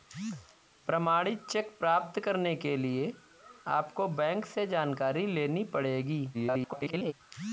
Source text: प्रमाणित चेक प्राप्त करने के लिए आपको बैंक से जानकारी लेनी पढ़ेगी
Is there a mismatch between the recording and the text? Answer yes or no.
yes